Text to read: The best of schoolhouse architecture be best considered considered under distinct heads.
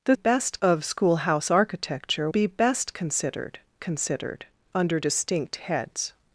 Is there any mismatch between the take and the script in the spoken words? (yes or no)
no